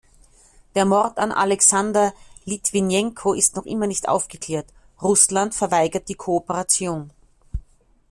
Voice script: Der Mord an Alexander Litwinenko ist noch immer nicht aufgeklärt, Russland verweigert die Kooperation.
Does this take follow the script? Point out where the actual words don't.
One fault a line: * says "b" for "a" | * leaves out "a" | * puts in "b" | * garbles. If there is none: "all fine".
all fine